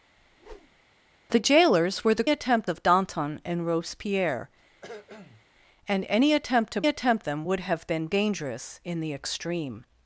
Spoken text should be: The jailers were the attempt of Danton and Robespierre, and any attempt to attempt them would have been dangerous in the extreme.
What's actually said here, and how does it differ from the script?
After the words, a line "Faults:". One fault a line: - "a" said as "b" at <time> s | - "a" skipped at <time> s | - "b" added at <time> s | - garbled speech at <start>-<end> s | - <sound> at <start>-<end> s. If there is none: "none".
The jailers were the attempt of Danton and Robespierre, and any attempt to attempt them would have been dangerous in the extreme.
Faults:
- whoosh at 0.2-0.8 s
- cough at 4.8-5.5 s